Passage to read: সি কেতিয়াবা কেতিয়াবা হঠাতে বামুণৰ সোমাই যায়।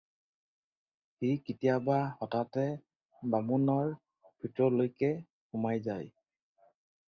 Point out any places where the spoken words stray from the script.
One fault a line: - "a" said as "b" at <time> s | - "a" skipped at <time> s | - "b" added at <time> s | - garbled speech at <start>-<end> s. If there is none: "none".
- "কেতিয়াবা" skipped at 2.0 s
- "ভিতৰলৈকে" added at 4.4 s